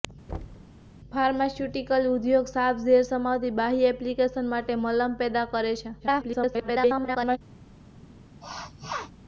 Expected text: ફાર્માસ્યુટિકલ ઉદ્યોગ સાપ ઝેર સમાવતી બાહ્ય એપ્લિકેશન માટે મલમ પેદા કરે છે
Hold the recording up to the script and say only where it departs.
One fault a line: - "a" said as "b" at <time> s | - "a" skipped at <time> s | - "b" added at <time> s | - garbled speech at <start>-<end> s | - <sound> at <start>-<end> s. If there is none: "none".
- thud at 0.3-0.7 s
- garbled speech at 6.0-7.4 s
- sneeze at 8.4-9.1 s